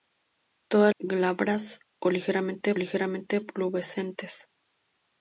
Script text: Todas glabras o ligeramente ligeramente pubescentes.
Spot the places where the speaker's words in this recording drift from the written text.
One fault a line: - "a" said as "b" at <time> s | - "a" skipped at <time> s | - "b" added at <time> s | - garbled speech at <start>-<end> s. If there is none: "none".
none